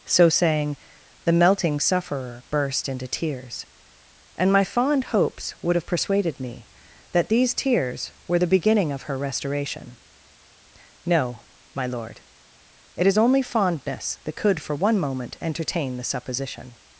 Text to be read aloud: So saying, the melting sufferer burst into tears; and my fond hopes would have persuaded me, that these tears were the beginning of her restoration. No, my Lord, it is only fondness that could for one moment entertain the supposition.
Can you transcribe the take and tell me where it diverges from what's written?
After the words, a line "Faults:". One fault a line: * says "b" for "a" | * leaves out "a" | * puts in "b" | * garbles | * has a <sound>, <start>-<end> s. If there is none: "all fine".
So saying, the melting sufferer burst into tears; and my fond hopes would have persuaded me, that these tears were the beginning of her restoration. No, my Lord, it is only fondness that could for one moment entertain the supposition.
Faults:
all fine